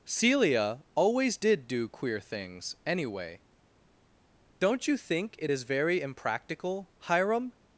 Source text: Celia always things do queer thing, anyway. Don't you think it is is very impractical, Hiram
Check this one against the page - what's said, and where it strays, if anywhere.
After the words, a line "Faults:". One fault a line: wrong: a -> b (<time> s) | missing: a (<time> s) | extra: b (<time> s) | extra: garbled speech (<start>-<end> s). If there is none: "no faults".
Celia always did do queer things, anyway. Don't you think it is very impractical, Hiram
Faults:
wrong: things -> did (1.4 s)
wrong: thing -> things (2.2 s)
missing: is (5.6 s)